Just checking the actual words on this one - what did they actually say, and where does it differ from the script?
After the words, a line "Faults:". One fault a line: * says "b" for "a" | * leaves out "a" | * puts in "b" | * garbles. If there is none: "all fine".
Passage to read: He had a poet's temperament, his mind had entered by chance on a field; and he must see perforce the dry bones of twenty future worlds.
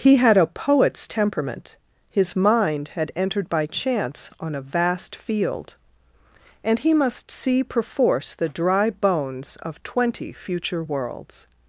He had a poet's temperament, his mind had entered by chance on a vast field; and he must see perforce the dry bones of twenty future worlds.
Faults:
* puts in "vast"